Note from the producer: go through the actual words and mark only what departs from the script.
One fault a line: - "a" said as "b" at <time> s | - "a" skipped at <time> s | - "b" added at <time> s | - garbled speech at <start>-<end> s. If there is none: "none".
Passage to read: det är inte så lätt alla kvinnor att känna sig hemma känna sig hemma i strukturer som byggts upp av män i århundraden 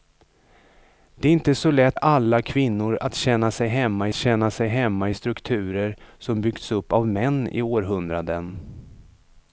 none